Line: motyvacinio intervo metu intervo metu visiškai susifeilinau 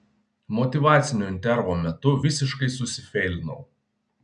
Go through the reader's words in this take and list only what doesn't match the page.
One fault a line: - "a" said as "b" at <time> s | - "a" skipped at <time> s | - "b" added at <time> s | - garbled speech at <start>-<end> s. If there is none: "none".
- "intervo metu" skipped at 2.1 s